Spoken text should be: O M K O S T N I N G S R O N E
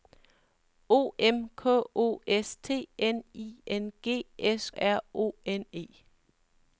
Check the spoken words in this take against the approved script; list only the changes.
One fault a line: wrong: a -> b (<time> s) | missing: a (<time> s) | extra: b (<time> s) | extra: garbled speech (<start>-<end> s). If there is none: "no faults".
no faults